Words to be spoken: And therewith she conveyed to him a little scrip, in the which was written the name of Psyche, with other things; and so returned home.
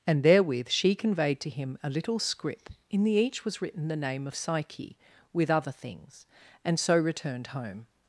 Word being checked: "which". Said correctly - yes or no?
no